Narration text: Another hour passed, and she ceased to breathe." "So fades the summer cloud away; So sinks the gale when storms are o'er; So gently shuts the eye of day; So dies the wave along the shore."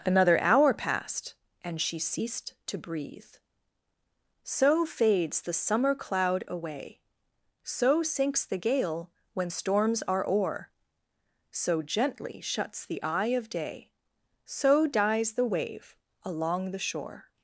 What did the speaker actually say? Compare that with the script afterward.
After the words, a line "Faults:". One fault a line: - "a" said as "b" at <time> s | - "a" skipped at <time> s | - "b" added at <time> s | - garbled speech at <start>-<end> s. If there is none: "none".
Another hour passed, and she ceased to breathe." "So fades the summer cloud away; So sinks the gale when storms are o'er; So gently shuts the eye of day; So dies the wave along the shore."
Faults:
none